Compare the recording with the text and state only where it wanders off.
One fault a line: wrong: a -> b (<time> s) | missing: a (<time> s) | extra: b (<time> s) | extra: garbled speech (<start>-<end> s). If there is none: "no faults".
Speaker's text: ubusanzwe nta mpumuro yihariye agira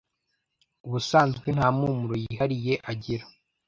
no faults